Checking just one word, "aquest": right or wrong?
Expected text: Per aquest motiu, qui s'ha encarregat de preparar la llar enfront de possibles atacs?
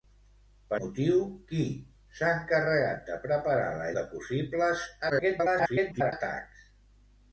wrong